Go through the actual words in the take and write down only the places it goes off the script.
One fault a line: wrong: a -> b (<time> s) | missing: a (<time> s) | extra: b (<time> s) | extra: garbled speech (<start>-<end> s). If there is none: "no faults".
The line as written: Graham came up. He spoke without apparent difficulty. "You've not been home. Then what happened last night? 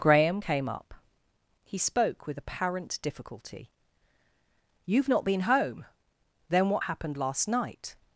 wrong: without -> with (2.2 s)